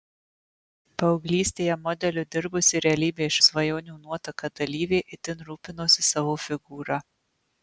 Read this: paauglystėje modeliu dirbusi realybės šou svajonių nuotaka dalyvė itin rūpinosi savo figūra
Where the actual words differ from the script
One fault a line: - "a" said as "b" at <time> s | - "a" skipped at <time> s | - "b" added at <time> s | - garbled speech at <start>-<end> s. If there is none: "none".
- "šou" skipped at 3.4 s